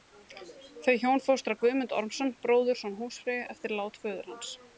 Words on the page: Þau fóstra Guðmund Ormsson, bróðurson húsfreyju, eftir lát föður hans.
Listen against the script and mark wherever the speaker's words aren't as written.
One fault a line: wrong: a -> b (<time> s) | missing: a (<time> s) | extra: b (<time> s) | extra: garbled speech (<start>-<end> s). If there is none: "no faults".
extra: hjón (1.0 s)